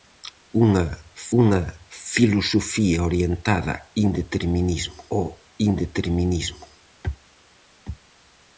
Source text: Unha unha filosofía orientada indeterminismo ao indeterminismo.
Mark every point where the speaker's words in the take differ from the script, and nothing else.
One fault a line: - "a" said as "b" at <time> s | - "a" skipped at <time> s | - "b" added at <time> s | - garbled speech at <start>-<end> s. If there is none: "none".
none